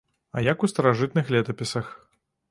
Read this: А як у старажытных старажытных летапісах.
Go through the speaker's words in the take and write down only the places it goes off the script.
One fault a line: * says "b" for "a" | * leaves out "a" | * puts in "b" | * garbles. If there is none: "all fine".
* leaves out "старажытных"